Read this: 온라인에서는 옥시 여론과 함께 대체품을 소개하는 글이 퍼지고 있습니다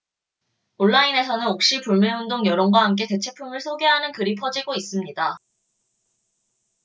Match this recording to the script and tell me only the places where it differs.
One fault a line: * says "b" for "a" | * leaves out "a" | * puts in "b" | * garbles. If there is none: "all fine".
* puts in "불매운동"